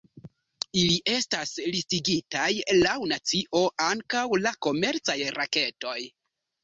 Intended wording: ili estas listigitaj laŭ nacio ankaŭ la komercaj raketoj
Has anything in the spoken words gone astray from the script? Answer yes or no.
no